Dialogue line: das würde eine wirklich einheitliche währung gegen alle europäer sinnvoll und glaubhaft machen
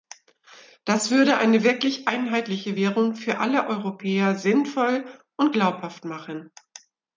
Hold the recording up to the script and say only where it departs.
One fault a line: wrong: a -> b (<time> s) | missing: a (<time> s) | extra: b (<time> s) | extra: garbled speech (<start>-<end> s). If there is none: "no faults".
wrong: gegen -> für (3.2 s)